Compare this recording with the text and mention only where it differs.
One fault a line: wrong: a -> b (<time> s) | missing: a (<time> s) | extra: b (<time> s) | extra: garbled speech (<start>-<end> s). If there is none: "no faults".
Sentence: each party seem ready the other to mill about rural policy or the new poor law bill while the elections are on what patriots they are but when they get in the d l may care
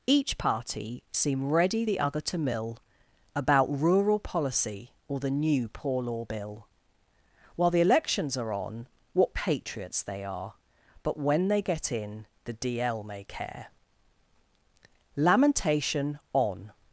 extra: lamentation on (15.2 s)